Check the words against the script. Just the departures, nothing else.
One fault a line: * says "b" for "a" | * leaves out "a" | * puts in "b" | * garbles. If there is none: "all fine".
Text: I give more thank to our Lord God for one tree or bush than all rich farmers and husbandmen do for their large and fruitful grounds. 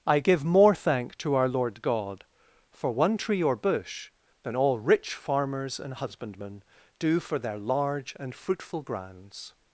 all fine